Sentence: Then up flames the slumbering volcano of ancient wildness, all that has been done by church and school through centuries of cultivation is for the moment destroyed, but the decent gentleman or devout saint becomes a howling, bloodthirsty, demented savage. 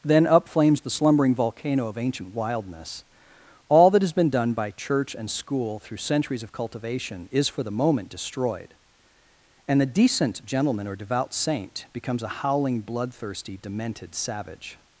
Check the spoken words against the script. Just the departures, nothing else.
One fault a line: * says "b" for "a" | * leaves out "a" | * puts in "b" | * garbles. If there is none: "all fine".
* says "and" for "but"